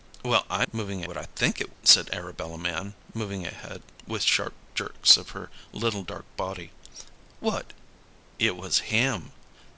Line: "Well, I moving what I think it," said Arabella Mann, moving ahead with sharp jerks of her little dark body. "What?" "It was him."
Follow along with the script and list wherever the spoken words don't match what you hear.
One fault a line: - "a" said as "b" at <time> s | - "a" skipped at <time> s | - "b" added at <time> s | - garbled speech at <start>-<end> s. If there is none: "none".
none